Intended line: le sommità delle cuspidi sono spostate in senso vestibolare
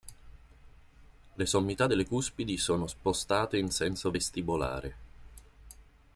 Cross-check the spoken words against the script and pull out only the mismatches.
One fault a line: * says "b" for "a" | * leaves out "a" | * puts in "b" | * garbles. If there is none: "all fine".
all fine